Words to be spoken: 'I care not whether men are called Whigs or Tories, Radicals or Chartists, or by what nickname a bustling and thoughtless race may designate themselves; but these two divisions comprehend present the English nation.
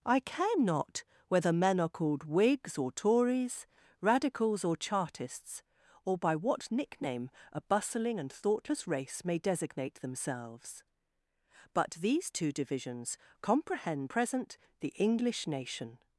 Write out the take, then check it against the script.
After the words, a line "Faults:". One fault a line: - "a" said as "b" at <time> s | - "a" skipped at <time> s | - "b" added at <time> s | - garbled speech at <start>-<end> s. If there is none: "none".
'I care not whether men are called Whigs or Tories, Radicals or Chartists, or by what nickname a bustling and thoughtless race may designate themselves; but these two divisions comprehend present the English nation.
Faults:
none